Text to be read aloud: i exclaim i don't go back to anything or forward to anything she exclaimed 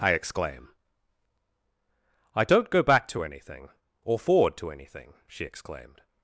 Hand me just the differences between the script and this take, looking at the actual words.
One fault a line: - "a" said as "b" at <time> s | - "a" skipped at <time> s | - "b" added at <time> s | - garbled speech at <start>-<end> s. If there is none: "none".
none